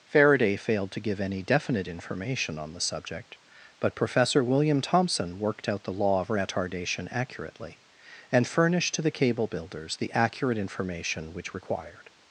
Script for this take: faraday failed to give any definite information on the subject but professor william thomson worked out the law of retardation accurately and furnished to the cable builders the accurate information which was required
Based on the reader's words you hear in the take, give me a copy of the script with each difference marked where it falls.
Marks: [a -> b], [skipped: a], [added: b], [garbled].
faraday failed to give any definite information on the subject but professor william thomson worked out the law of retardation accurately and furnished to the cable builders the accurate information which [skipped: was] required